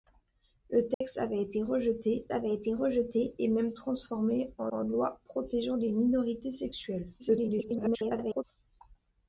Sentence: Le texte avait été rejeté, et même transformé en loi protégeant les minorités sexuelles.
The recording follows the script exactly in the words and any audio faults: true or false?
false